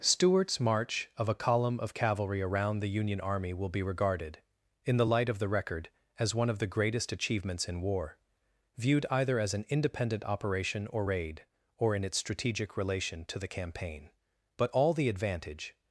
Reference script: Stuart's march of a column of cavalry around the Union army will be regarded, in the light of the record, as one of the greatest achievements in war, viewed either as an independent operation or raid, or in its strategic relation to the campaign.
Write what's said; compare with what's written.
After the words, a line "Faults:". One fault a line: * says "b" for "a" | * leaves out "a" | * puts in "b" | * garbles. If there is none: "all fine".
Stuart's march of a column of cavalry around the Union army will be regarded, in the light of the record, as one of the greatest achievements in war, viewed either as an independent operation or raid, or in its strategic relation to the campaign. But all the advantage
Faults:
* puts in "But all the advantage"